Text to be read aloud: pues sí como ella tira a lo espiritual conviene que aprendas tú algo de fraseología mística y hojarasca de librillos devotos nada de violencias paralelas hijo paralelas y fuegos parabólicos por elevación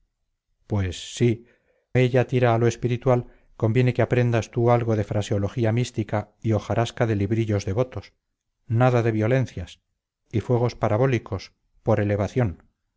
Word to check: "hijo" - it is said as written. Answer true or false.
false